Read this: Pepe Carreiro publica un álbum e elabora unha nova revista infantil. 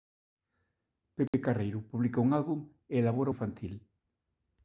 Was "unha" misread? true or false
true